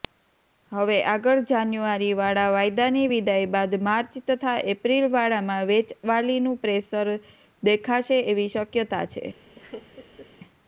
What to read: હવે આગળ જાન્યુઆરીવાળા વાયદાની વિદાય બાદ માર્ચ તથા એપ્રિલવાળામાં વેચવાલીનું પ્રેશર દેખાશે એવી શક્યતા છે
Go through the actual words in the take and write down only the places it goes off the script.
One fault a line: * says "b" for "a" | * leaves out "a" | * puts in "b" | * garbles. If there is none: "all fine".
all fine